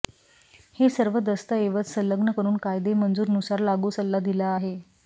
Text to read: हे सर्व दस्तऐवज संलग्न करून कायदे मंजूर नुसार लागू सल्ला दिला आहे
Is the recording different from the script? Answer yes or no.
no